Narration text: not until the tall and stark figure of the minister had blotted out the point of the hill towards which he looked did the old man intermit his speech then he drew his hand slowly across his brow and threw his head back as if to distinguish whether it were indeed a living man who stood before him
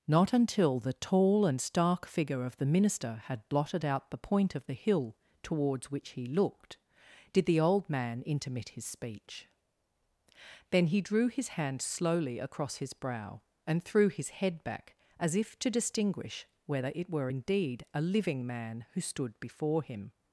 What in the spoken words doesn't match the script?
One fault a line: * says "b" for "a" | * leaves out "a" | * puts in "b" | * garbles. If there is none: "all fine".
all fine